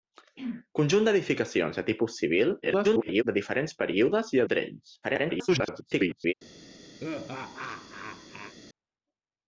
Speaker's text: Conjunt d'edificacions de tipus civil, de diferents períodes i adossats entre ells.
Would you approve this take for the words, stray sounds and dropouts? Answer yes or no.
no